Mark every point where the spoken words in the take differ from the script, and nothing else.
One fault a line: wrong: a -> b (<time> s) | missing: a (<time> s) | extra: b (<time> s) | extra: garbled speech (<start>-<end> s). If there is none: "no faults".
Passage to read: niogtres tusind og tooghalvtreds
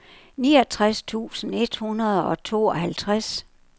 extra: et hundrede (1.6 s)